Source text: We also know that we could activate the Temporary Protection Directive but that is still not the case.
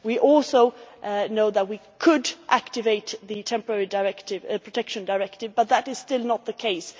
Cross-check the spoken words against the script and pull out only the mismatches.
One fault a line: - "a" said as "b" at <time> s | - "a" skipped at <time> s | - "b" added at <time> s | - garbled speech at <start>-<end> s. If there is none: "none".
none